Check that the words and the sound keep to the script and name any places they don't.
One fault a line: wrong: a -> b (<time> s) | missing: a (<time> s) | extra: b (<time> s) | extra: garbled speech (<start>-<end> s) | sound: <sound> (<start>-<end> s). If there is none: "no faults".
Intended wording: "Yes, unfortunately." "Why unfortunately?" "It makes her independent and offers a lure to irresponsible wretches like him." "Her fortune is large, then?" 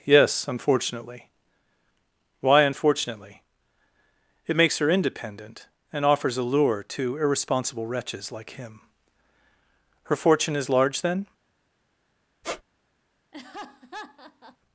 sound: squeak (12.4-12.6 s)
sound: laugh (13.3-14.6 s)